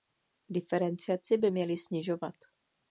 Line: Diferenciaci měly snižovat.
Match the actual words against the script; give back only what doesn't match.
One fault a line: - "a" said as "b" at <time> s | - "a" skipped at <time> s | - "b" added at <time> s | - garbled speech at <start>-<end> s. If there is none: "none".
- "by" added at 1.4 s